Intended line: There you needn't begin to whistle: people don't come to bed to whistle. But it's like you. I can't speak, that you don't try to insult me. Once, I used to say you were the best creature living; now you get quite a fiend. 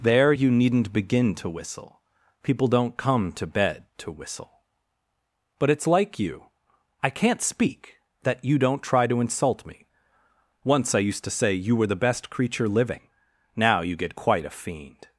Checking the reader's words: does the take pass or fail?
pass